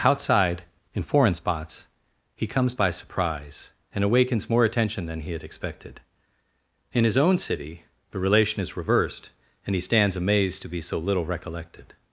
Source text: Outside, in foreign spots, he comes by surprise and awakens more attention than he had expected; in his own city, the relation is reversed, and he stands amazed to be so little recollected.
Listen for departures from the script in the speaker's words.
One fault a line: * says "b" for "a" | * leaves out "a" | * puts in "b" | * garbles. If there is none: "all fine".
all fine